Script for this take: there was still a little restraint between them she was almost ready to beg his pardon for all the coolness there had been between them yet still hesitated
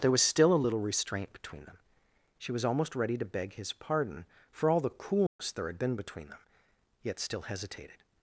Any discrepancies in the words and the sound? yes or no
yes